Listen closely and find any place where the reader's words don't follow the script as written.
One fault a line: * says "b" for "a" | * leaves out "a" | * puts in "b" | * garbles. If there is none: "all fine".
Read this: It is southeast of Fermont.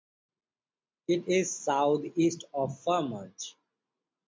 all fine